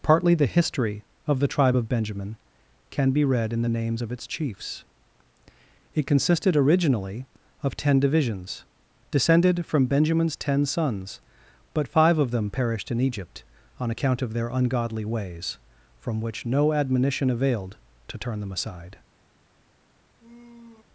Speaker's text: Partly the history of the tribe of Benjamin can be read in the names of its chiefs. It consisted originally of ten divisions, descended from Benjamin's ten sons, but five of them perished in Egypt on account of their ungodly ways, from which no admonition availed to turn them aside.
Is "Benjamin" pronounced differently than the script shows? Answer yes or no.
no